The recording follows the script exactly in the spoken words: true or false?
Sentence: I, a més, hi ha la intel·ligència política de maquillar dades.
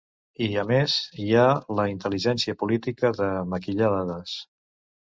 true